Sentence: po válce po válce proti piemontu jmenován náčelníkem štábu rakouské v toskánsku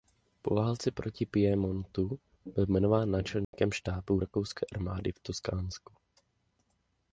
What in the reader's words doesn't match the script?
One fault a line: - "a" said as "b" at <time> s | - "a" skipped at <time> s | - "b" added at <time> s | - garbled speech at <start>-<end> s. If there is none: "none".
- "po válce" skipped at 0.9 s
- "byl" added at 2.5 s
- "armády" added at 4.7 s